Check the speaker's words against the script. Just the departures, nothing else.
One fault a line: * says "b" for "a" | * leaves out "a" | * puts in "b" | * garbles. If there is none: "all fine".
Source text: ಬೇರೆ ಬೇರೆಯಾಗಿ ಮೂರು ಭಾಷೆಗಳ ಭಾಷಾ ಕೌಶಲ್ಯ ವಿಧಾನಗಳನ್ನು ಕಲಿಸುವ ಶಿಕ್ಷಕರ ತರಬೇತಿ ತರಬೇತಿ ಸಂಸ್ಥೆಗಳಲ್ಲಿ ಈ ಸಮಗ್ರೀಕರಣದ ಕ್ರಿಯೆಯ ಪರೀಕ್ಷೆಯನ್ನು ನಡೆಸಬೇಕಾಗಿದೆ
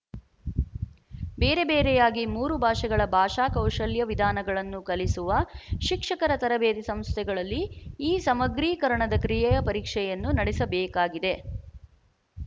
* leaves out "ತರಬೇತಿ"